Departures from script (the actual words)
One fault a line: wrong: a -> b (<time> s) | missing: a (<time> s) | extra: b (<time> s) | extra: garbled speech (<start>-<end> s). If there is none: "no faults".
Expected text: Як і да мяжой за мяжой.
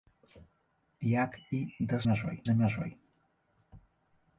no faults